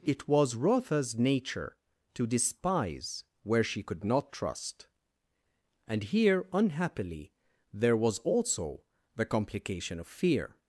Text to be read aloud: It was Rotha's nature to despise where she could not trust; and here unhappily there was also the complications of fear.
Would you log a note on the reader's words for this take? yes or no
yes